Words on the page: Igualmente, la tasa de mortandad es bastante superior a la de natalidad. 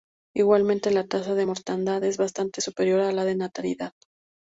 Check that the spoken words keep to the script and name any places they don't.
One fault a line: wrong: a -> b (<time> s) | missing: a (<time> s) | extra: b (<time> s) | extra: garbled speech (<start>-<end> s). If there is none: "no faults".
no faults